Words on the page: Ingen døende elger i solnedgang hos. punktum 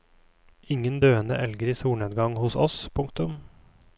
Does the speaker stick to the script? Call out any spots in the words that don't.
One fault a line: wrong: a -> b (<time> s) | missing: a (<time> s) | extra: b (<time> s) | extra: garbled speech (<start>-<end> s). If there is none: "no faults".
extra: oss (2.7 s)